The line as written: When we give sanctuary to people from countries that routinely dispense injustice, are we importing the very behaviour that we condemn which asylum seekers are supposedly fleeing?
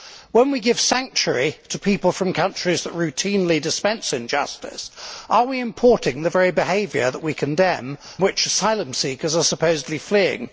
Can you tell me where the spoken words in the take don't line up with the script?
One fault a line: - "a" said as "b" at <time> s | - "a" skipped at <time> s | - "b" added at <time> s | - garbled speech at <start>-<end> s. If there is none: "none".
none